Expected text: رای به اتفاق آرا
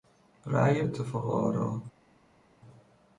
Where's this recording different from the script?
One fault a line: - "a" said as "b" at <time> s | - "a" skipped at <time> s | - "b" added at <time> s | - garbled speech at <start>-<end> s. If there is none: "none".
- "به" skipped at 0.8 s